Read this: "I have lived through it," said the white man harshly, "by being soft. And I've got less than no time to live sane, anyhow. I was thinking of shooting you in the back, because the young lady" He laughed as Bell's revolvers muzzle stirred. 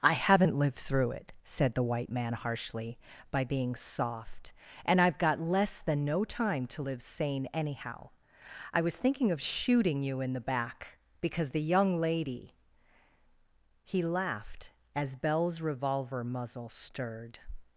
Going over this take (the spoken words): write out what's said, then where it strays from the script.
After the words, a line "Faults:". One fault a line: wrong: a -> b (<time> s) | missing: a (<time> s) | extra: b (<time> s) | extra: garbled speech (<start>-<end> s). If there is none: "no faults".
"I haven't lived through it," said the white man harshly, "by being soft. And I've got less than no time to live sane, anyhow. I was thinking of shooting you in the back, because the young lady" He laughed as Bell's revolver muzzle stirred.
Faults:
wrong: have -> haven't (0.1 s)
wrong: revolvers -> revolver (15.6 s)